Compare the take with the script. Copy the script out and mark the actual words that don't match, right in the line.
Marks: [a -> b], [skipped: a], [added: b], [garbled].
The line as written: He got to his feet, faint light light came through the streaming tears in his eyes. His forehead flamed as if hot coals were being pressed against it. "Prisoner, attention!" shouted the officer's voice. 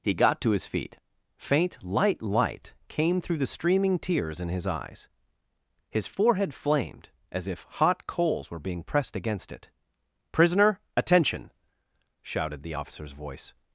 He got to his feet, faint light light came through the streaming tears in his eyes. His forehead flamed as if hot coals were being pressed against it. "Prisoner, attention!" shouted the officer's voice.